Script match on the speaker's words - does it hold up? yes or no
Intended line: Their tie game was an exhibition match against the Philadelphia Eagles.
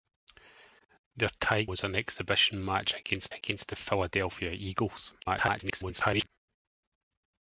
no